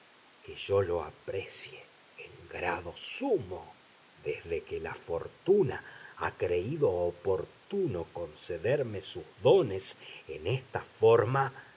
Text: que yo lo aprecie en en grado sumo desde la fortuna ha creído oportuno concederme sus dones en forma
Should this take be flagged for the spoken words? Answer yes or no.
yes